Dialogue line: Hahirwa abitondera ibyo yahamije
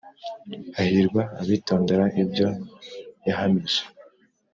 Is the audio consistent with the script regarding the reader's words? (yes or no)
yes